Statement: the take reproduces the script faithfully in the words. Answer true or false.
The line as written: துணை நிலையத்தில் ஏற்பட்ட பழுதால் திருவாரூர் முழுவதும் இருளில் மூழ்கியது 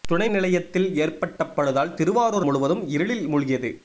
true